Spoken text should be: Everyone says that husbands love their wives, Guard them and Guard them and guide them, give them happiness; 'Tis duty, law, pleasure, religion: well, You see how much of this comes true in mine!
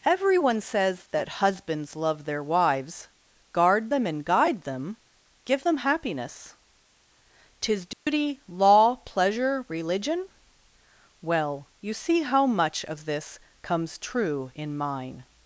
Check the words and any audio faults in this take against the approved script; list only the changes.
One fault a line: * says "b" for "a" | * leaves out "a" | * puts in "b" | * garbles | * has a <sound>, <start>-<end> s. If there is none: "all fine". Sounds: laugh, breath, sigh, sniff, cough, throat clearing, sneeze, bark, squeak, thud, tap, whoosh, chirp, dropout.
* leaves out "Guard them and"
* has a dropout, 7.9-8.1 s